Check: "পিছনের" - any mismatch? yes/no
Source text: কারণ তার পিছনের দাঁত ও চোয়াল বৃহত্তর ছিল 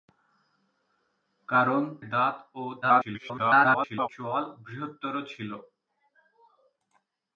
yes